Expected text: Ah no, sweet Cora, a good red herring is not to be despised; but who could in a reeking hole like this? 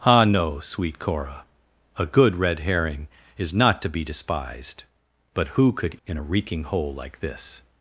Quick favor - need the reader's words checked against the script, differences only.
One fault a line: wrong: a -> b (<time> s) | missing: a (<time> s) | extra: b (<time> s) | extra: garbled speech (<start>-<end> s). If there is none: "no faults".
no faults